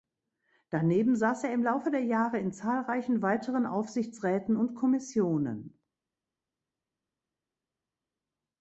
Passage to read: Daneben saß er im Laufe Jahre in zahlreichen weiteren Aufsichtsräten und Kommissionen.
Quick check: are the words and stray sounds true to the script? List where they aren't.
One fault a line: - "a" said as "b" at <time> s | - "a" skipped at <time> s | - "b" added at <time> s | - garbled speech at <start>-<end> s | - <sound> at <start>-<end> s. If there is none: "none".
- "der" added at 1.9 s